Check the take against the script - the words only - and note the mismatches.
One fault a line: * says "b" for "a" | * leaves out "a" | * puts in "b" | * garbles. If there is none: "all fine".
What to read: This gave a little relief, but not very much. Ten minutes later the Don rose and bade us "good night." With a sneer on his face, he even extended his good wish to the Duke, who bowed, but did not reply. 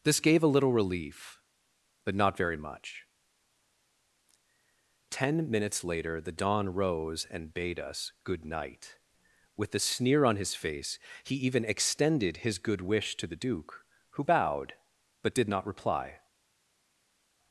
all fine